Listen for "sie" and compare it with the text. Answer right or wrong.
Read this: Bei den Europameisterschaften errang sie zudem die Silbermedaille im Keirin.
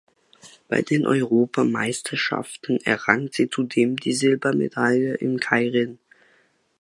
right